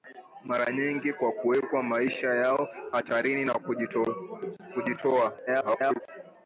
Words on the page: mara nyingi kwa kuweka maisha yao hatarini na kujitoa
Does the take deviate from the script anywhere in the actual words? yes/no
yes